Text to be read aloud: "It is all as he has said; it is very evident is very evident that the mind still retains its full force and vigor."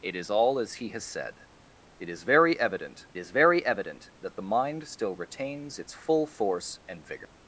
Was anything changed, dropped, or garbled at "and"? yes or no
no